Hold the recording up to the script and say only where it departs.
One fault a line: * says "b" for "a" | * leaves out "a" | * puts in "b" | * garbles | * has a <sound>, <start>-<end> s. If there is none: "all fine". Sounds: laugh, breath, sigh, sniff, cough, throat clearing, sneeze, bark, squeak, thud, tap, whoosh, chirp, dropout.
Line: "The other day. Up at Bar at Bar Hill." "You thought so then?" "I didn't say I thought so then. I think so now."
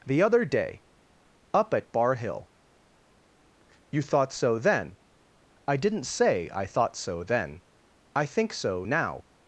* leaves out "at Bar"